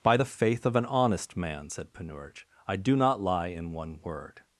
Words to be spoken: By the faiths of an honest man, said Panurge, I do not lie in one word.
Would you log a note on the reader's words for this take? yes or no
yes